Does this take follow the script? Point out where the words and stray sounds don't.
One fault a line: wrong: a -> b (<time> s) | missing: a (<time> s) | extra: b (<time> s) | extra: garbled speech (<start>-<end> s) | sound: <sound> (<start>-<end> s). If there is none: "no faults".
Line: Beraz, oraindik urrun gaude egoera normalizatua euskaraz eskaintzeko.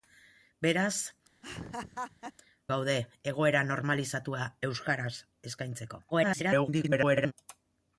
missing: oraindik urrun (0.9 s)
sound: laugh (1.4-2.3 s)
extra: garbled speech (6.1-7.3 s)